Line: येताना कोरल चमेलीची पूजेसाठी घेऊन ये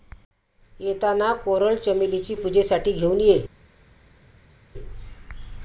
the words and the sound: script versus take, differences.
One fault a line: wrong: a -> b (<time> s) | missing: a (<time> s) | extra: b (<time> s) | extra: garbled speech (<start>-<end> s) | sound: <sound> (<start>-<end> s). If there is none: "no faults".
no faults